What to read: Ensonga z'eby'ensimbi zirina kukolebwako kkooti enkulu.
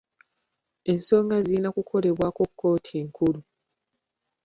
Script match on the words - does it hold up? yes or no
no